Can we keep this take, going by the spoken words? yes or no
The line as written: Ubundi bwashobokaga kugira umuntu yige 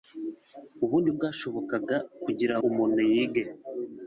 yes